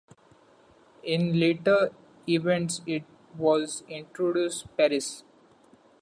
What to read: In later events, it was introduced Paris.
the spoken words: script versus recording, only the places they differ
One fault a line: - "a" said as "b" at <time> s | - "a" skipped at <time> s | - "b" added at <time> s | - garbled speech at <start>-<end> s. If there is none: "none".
none